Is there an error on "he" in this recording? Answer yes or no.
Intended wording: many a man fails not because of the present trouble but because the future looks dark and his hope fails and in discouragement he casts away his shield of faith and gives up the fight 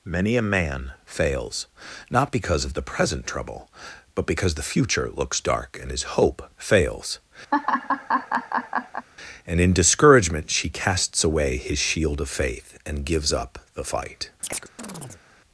yes